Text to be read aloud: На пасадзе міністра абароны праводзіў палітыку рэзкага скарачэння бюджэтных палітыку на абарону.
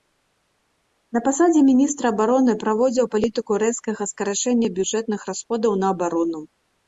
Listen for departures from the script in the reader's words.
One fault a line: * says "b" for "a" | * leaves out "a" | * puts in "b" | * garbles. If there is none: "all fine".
* says "расходаў" for "палітыку"